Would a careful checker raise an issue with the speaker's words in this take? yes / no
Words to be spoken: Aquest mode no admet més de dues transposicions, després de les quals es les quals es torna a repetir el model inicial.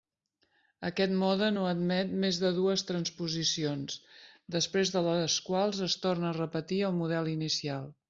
yes